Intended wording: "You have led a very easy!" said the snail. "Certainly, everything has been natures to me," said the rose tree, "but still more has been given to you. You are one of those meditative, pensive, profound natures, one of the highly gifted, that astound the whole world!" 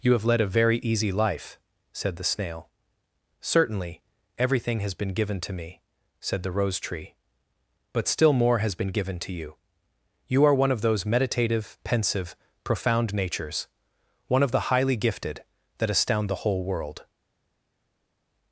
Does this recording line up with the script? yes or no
no